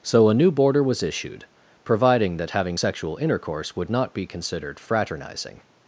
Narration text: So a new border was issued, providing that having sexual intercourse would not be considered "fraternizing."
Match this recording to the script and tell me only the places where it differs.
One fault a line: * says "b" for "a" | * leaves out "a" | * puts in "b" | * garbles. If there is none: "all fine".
all fine